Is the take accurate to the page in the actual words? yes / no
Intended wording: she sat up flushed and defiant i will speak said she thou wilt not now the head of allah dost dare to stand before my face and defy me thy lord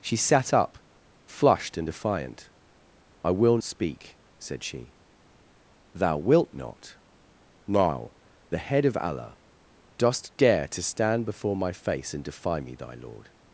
yes